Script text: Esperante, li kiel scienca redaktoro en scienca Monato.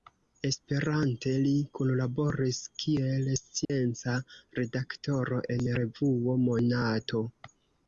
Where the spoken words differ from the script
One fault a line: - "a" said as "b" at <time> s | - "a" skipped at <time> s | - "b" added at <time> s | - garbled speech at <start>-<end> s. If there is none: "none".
- "kunlaboris" added at 1.8 s
- "scienca" said as "revuo" at 5.8 s